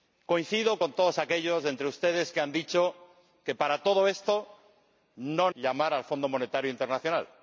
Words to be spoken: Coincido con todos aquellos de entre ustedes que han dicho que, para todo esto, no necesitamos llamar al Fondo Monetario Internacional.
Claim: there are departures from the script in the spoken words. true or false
true